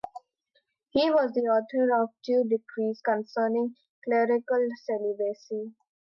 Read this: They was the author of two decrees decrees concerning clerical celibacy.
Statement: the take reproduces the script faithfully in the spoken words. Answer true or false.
false